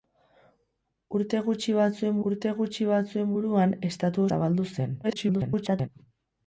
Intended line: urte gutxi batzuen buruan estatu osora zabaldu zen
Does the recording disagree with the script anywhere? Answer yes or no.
yes